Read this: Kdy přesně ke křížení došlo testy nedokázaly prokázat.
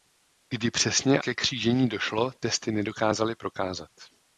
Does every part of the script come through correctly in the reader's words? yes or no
yes